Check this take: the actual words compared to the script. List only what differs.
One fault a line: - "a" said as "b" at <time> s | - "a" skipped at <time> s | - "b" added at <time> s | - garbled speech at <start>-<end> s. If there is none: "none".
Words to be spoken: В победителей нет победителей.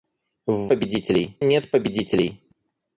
none